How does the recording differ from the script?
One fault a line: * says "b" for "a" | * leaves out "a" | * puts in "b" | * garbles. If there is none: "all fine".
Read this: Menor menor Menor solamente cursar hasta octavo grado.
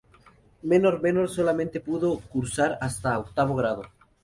* says "solamente pudo" for "Menor solamente"